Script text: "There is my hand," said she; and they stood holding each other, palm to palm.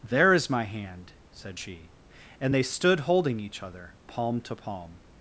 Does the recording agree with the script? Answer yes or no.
yes